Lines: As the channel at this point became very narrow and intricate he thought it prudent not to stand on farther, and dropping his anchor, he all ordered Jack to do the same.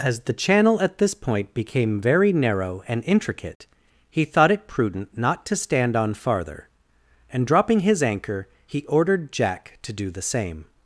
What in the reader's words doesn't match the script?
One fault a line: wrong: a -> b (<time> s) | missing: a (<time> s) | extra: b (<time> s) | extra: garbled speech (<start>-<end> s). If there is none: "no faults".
missing: all (8.8 s)